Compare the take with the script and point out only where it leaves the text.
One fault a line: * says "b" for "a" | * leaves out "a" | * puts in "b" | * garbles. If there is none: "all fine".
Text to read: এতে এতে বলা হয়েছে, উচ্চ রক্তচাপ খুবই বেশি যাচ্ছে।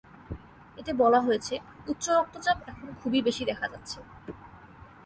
* leaves out "এতে"
* puts in "এখন"
* puts in "দেখা"